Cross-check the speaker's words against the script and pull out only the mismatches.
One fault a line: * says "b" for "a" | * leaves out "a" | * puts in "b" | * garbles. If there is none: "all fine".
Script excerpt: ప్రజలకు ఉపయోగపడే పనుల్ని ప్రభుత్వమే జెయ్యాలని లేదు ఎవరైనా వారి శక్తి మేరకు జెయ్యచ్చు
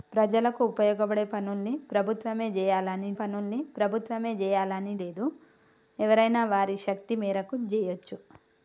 * puts in "పనుల్ని ప్రభుత్వమే జెయ్యాలని"